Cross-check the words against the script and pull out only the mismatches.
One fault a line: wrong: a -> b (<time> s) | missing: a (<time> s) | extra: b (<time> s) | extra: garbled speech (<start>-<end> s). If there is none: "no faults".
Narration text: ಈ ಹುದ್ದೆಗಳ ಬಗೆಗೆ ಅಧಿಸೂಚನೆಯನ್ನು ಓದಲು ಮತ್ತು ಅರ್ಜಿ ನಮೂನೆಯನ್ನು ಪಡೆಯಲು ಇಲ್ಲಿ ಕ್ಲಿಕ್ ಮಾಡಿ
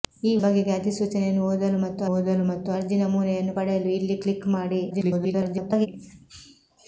missing: ಹುದ್ದೆಗಳ (0.4 s)
extra: ಓದಲು ಮತ್ತು (2.1 s)
extra: garbled speech (4.9-5.9 s)